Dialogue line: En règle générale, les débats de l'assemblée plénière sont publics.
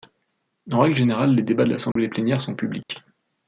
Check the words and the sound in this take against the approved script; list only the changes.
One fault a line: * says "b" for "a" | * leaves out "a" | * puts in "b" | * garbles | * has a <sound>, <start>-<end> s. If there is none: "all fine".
* has a dropout, 1.9-2.0 s
* has a dropout, 2.8-2.9 s